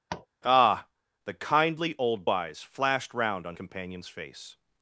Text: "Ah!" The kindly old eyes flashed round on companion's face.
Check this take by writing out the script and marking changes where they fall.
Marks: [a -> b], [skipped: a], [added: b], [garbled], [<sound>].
[tap] "Ah!" The kindly old eyes flashed round on companion's face.